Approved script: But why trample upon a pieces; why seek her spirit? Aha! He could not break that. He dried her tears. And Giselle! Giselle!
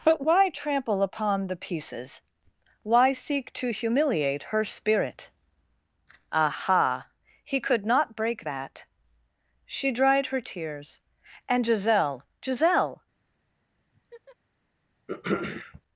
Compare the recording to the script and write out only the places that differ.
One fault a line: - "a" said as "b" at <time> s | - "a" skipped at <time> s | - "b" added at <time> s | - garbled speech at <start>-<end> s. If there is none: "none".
- "a" said as "the" at 1.4 s
- "to humiliate" added at 3.5 s
- "He" said as "She" at 9.6 s